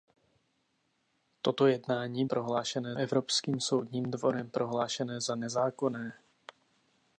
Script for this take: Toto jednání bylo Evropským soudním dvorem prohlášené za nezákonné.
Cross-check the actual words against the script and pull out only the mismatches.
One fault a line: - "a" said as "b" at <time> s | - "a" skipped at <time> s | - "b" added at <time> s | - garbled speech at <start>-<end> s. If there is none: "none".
- "bylo" said as "prohlášené" at 2.3 s